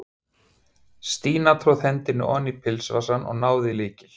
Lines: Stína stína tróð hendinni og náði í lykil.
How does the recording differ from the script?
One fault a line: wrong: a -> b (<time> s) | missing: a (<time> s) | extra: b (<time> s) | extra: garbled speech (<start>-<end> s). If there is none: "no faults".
missing: stína (1.5 s)
extra: oní pilsvasann (2.4 s)